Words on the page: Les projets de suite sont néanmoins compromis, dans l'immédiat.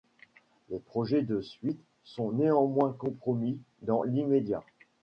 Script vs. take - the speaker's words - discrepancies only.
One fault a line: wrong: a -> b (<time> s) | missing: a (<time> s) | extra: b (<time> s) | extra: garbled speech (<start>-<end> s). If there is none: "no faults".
no faults